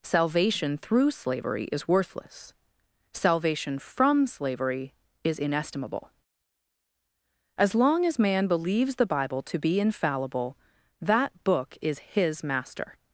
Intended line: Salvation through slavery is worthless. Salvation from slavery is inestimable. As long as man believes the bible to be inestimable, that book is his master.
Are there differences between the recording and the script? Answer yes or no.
yes